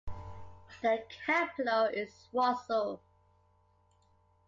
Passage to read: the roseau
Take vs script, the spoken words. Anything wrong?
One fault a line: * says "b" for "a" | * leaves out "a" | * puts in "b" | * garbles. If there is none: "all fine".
* puts in "capital is"